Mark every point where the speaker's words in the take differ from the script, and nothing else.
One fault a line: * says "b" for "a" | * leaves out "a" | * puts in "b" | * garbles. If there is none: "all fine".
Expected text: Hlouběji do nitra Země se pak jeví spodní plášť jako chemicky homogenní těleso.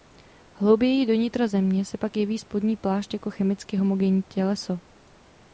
all fine